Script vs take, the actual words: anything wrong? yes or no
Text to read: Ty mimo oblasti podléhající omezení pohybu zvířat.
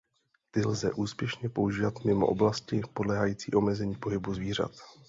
yes